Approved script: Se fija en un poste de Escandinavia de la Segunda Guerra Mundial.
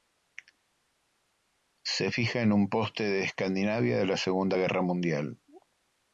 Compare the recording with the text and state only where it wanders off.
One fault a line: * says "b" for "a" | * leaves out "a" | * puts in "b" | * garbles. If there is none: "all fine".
all fine